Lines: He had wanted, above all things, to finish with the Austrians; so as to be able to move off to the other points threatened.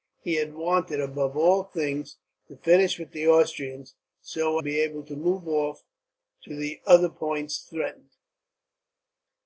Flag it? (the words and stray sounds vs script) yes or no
yes